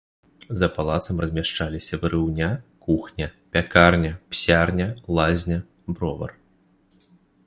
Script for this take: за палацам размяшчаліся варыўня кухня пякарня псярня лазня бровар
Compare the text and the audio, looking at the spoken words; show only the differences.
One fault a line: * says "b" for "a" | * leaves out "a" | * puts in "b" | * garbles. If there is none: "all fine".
all fine